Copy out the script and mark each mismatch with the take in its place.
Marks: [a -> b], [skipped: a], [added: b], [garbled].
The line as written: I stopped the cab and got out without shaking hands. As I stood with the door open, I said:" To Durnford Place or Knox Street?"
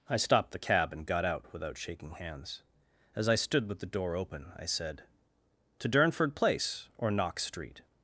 I stopped the cab and got out without shaking hands. As I stood with the door open, I said:" To Durnford Place or Knox Street?"